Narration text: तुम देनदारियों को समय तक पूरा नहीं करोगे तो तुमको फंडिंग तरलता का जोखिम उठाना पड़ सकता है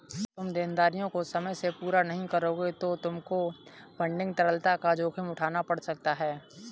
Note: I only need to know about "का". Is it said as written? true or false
true